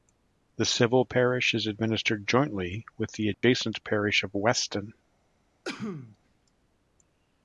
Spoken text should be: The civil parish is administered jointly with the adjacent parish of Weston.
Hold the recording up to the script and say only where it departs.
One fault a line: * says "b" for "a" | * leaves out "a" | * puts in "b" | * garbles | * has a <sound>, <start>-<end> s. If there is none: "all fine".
* has a dropout, 3.3-3.4 s
* has a sneeze, 5.6-6.2 s